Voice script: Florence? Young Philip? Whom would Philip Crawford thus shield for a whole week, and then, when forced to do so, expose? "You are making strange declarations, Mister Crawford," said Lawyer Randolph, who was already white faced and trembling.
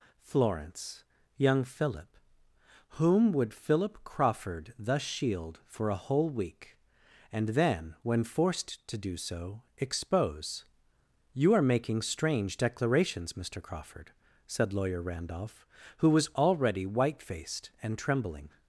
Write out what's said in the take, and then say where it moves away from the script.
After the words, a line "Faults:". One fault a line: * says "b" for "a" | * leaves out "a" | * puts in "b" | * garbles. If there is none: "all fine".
Florence? Young Philip? Whom would Philip Crawford thus shield for a whole week, and then, when forced to do so, expose? "You are making strange declarations, Mister Crawford," said Lawyer Randolph, who was already white faced and trembling.
Faults:
all fine